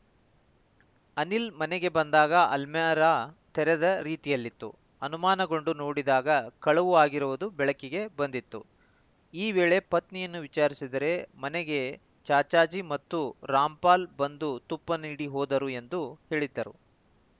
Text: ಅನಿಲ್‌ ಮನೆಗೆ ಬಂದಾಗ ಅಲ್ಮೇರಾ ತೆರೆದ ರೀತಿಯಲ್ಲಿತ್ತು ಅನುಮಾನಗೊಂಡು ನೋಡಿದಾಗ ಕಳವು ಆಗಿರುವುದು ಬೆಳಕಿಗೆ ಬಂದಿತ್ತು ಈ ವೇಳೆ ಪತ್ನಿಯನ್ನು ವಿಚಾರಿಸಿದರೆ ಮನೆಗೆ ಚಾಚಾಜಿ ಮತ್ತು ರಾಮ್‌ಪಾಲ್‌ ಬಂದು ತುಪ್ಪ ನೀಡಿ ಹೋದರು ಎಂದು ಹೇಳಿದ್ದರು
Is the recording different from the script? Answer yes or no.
no